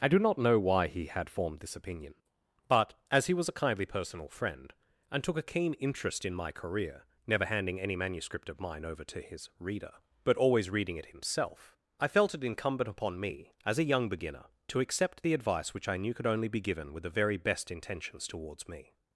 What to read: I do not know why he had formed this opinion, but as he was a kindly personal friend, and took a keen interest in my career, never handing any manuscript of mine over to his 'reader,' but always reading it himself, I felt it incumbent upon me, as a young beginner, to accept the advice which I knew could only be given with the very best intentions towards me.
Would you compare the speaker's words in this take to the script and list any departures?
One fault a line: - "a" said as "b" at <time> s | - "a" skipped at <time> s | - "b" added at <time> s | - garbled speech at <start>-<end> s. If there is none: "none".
none